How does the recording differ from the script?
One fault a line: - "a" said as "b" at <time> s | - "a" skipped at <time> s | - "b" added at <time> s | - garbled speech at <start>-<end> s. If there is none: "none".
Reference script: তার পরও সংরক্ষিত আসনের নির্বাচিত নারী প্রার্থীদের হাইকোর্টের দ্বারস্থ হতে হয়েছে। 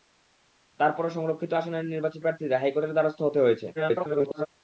- "নারী" skipped at 2.2 s
- garbled speech at 3.7-4.5 s